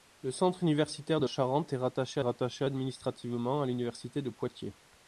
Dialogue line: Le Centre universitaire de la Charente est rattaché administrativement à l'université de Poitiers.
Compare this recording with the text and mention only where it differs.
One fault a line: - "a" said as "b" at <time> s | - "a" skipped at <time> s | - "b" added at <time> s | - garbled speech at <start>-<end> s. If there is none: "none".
- "la" skipped at 1.3 s
- "rattaché" added at 2.2 s